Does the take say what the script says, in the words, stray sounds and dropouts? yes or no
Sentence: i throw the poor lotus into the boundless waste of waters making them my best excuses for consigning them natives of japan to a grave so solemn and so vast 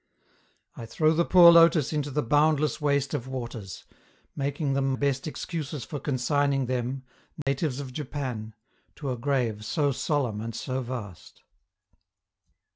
no